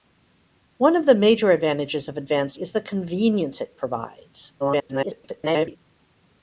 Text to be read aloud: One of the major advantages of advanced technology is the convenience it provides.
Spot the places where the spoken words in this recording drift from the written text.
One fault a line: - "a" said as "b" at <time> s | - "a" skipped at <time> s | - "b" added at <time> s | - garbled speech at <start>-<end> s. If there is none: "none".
- "technology" skipped at 2.6 s
- garbled speech at 4.6-5.8 s